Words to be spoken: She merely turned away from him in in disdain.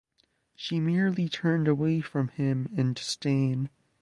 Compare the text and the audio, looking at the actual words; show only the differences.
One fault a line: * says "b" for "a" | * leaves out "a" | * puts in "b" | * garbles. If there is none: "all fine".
* leaves out "in"